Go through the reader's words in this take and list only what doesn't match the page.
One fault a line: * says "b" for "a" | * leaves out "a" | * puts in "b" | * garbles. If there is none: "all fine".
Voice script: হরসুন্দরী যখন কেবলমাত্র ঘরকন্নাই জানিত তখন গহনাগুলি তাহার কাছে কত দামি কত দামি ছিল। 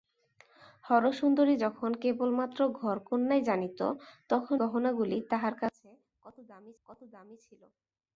all fine